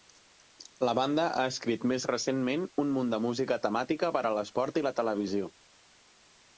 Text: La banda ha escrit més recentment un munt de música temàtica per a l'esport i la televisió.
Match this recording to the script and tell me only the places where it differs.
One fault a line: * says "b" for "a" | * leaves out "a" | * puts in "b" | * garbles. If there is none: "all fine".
all fine